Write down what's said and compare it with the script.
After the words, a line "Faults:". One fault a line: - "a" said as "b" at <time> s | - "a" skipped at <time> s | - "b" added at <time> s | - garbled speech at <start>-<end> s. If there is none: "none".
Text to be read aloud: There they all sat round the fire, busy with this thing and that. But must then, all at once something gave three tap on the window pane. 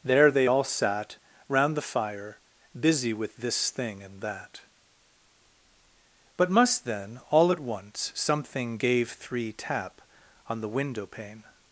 There they all sat round the fire, busy with this thing and that. But must then, all at once something gave three tap on the window pane.
Faults:
none